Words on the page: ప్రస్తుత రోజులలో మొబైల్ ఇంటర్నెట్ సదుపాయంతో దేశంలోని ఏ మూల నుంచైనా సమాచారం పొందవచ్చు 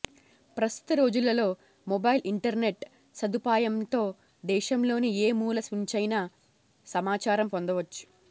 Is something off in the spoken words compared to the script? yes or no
no